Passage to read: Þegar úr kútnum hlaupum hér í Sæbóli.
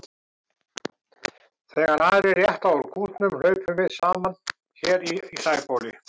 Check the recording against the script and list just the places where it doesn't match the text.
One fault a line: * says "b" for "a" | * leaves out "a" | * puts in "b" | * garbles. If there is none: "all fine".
* puts in "aðrir rétta"
* puts in "við saman"